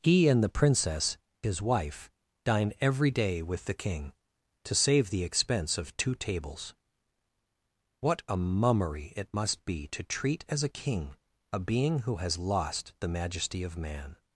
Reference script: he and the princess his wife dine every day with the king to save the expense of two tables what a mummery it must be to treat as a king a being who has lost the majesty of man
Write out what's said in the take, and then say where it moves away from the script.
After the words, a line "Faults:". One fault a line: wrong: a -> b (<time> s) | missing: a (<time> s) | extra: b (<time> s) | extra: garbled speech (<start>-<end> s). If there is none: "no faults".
he and the princess his wife dine every day with the king to save the expense of two tables what a mummery it must be to treat as a king a being who has lost the majesty of man
Faults:
no faults